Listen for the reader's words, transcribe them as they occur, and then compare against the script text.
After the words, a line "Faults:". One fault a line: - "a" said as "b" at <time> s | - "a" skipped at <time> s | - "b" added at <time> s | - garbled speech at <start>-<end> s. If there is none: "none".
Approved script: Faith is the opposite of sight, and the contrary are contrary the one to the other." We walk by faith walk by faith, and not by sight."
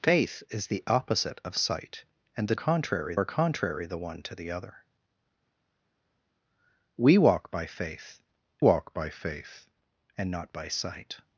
Faith is the opposite of sight, and the contrary are contrary the one to the other." We walk by faith walk by faith, and not by sight."
Faults:
none